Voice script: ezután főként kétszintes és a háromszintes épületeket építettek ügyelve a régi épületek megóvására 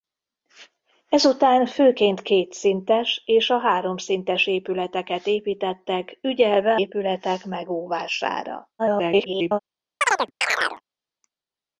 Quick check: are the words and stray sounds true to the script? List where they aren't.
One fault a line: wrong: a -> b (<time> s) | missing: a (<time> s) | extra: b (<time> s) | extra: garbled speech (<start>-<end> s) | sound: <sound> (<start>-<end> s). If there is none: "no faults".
missing: a régi (6.8 s)
extra: garbled speech (8.8-9.6 s)
sound: chirp (10.0-10.8 s)